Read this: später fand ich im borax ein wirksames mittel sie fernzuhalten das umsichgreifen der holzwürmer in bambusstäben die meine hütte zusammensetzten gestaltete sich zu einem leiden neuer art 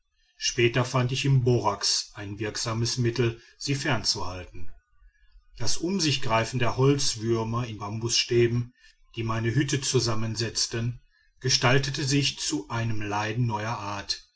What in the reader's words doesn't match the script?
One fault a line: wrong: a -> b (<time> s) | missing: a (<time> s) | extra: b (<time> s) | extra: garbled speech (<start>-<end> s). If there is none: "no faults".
no faults